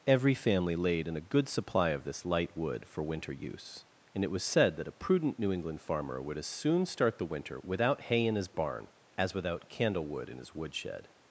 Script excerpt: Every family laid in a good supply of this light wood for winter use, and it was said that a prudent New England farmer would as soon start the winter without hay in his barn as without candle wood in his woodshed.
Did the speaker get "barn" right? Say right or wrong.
right